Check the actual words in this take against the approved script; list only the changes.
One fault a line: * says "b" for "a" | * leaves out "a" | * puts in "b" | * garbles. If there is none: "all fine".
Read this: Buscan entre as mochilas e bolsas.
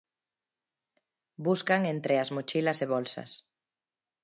all fine